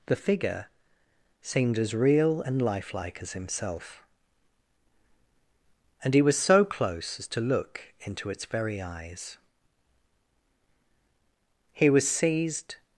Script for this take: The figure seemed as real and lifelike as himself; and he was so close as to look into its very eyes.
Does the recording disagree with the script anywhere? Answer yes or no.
yes